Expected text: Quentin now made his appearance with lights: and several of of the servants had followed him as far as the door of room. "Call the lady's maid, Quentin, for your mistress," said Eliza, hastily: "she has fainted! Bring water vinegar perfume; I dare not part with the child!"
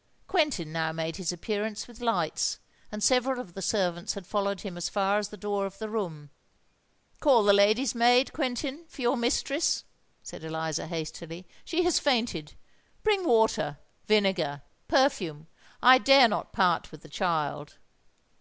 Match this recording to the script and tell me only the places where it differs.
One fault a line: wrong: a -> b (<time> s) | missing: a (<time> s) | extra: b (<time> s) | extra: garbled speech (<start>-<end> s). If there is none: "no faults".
missing: of (3.5 s)
extra: the (5.8 s)